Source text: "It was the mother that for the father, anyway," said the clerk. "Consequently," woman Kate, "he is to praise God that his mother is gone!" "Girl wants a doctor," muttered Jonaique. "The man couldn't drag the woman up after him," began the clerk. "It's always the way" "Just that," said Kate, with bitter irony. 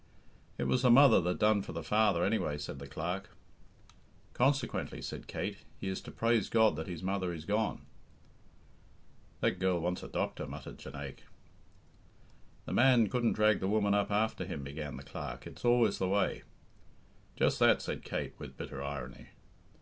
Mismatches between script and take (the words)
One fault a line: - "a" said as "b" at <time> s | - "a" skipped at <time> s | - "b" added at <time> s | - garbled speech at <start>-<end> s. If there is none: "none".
- "done" added at 1.4 s
- "woman" said as "said" at 5.0 s
- "That" added at 9.4 s